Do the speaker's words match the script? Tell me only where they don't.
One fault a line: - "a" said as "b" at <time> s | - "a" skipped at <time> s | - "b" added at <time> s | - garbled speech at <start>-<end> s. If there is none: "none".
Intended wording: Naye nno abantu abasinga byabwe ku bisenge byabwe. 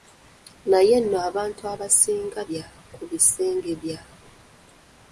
none